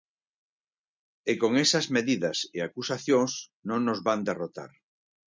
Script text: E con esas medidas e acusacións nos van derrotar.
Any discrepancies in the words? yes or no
yes